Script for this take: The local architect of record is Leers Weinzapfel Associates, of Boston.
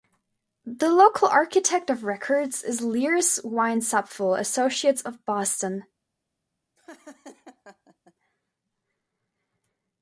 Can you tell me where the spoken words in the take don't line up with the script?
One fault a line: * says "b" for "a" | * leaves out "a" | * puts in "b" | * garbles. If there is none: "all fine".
all fine